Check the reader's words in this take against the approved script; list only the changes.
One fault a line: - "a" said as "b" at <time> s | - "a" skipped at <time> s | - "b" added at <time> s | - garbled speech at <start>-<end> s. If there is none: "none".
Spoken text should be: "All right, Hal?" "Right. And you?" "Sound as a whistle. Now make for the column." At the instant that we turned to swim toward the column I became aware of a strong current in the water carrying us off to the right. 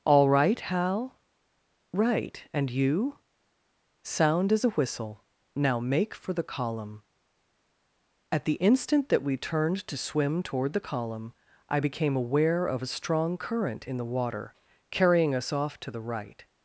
none